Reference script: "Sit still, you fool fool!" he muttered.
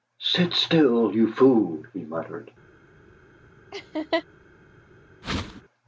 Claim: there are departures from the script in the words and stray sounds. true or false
true